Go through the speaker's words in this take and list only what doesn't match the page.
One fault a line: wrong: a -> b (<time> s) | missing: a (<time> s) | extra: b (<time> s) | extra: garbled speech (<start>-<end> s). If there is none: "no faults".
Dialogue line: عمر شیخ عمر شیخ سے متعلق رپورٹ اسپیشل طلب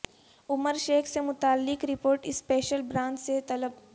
missing: عمر شیخ (1.1 s)
extra: برانچ سے (2.8 s)